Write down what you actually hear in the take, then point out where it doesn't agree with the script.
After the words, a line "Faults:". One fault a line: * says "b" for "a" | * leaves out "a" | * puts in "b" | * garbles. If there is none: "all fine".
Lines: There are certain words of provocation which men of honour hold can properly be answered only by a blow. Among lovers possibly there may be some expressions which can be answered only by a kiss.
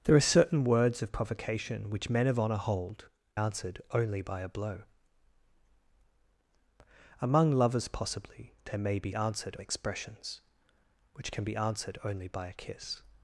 There are certain words of provocation which men of honour hold answered only by a blow. Among lovers possibly there may be answered expressions which can be answered only by a kiss.
Faults:
* leaves out "can properly be"
* says "answered" for "some"